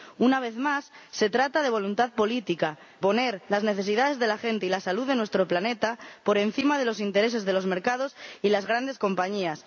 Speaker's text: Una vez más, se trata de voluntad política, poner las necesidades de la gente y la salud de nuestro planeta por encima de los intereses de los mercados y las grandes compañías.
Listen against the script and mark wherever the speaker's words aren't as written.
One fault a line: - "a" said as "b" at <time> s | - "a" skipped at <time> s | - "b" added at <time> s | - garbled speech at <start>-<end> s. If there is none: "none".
none